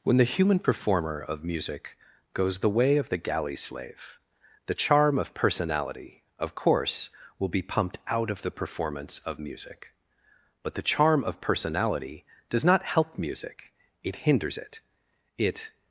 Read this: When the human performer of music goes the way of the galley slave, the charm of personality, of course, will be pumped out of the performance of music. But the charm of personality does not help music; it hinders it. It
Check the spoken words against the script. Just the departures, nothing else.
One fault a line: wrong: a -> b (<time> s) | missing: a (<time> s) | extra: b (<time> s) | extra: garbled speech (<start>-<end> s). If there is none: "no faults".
no faults